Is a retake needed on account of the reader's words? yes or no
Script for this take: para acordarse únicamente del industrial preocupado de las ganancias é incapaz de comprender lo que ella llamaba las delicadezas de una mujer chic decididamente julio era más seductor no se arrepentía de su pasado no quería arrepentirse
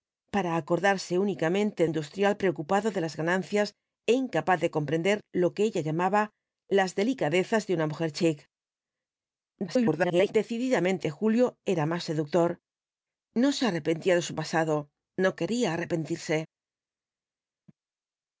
yes